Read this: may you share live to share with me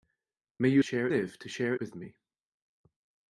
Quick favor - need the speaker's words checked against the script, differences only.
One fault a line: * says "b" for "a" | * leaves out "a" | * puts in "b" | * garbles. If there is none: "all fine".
all fine